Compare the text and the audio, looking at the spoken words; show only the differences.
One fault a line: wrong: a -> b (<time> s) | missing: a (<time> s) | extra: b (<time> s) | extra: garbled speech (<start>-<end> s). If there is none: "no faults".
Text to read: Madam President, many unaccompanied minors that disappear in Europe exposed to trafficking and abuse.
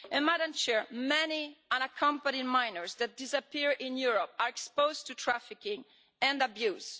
extra: are (4.4 s)